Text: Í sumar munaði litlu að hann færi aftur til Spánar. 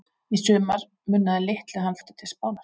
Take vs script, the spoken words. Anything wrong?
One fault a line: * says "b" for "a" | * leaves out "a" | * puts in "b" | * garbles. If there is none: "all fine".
* leaves out "færi"